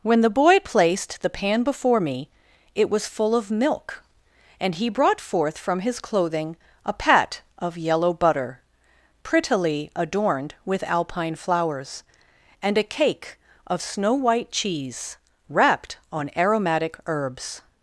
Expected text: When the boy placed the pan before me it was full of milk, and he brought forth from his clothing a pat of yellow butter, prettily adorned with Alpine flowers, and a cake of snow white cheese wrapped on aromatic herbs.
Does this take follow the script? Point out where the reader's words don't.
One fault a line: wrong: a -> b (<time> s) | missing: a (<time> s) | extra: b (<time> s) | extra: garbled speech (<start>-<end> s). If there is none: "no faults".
no faults